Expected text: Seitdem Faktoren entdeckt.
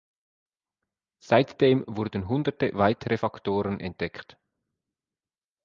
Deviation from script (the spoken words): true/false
true